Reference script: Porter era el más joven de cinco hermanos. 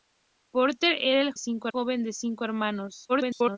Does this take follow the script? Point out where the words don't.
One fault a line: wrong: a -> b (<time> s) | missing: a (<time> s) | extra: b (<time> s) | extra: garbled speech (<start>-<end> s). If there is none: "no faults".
wrong: más -> cinco (1.4 s)
extra: garbled speech (3.1-3.6 s)